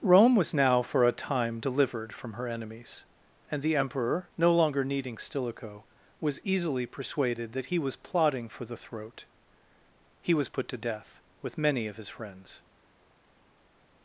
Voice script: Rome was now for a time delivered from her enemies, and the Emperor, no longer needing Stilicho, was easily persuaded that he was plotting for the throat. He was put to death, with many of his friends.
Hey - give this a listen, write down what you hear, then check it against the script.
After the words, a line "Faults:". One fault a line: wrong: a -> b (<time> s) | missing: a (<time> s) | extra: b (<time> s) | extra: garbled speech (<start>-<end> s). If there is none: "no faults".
Rome was now for a time delivered from her enemies, and the Emperor, no longer needing Stilicho, was easily persuaded that he was plotting for the throat. He was put to death, with many of his friends.
Faults:
no faults